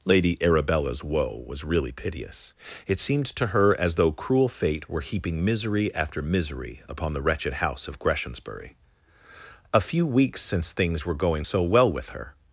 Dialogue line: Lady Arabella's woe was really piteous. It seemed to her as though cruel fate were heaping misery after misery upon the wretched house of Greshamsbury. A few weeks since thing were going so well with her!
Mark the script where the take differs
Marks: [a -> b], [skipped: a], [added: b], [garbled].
Lady Arabella's woe was really piteous. It seemed to her as though cruel fate were heaping misery after misery upon the wretched house of Greshamsbury. A few weeks since [thing -> things] were going so well with her!